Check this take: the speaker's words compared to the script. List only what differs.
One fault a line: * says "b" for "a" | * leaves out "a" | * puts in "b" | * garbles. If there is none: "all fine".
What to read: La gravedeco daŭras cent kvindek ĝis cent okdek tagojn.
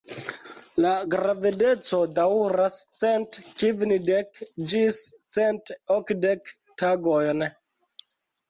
all fine